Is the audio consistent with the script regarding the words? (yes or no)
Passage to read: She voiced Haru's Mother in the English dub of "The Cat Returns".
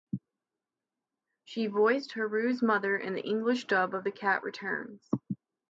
yes